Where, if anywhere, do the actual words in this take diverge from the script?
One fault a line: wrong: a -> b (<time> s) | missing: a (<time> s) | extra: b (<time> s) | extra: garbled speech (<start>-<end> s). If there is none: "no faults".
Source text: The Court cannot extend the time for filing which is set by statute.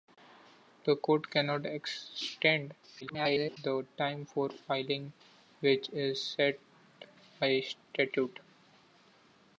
extra: garbled speech (3.0-3.6 s)